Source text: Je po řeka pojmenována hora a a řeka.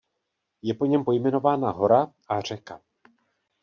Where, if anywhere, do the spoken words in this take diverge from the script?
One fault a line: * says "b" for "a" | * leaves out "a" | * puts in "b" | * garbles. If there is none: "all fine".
* says "něm" for "řeka"
* leaves out "a"